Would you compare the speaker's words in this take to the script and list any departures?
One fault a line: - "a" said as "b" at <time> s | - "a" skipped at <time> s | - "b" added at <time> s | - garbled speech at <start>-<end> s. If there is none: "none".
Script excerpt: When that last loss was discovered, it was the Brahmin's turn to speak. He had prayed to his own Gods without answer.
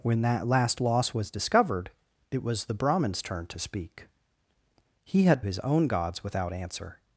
- "prayed to" skipped at 5.4 s